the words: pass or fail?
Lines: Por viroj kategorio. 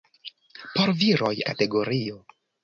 pass